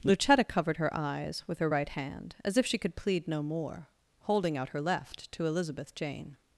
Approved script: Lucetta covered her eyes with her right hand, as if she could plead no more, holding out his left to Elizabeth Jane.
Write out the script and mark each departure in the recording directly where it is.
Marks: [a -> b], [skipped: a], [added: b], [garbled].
Lucetta covered her eyes with her right hand, as if she could plead no more, holding out [his -> her] left to Elizabeth Jane.